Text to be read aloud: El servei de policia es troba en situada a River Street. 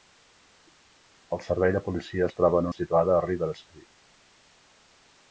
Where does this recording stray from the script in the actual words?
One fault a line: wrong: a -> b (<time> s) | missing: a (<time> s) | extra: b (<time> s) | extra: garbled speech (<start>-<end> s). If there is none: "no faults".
no faults